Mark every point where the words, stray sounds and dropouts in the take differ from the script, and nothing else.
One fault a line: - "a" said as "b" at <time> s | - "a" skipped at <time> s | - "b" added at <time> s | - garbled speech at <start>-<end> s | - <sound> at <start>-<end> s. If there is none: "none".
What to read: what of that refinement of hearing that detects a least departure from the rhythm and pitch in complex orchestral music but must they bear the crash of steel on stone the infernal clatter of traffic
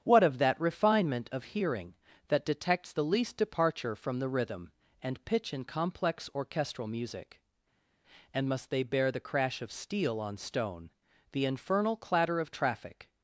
- "a" said as "the" at 2.9 s
- "but" said as "and" at 8.3 s